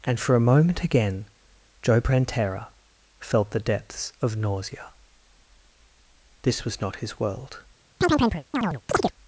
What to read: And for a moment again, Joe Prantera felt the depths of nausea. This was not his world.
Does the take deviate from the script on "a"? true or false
false